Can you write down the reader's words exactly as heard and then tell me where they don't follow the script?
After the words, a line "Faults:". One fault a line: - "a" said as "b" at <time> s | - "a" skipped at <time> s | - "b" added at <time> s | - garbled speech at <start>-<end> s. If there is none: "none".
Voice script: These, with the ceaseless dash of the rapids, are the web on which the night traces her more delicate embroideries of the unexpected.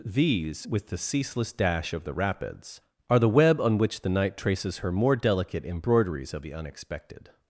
These, with the ceaseless dash of the rapids, are the web on which the night traces her more delicate embroideries of the unexpected.
Faults:
none